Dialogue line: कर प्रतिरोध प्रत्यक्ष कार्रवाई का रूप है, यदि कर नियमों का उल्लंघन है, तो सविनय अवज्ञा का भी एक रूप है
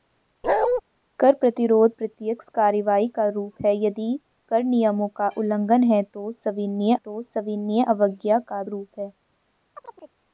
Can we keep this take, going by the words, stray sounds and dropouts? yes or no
no